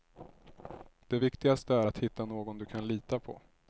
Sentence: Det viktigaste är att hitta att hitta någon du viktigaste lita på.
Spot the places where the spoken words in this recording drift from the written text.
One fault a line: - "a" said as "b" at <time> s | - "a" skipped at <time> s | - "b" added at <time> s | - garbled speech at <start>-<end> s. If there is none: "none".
- "att hitta" skipped at 2.2 s
- "viktigaste" said as "kan" at 2.6 s